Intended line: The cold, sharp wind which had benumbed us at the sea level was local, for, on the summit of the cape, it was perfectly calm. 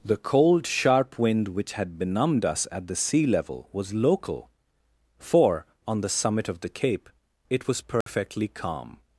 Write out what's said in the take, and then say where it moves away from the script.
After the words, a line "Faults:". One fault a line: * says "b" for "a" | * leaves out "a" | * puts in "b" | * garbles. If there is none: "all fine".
The cold, sharp wind which had benumbed us at the sea level was local, for, on the summit of the cape, it was perfectly calm.
Faults:
all fine